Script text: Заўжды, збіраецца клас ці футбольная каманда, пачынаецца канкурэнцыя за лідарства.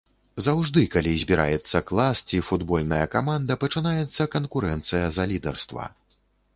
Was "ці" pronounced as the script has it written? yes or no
yes